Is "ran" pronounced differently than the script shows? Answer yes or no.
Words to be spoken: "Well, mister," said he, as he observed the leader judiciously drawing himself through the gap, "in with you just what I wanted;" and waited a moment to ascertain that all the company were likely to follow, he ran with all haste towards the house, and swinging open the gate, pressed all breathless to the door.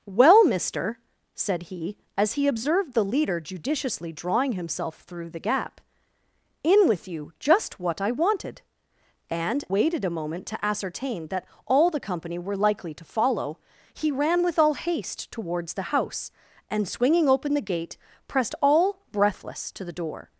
no